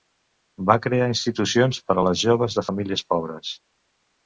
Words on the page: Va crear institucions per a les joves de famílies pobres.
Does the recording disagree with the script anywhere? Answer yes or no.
no